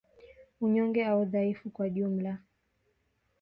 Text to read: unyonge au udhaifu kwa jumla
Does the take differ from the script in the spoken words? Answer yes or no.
no